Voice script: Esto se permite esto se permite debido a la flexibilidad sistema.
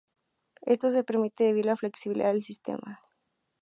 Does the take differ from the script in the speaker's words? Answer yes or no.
yes